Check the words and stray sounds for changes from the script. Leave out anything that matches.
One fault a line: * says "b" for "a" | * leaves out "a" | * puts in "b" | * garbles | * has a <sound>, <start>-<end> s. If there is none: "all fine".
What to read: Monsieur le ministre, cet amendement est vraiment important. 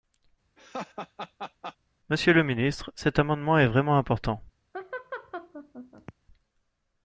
* has a laugh, 0.6-1.8 s
* has a laugh, 4.7-6.1 s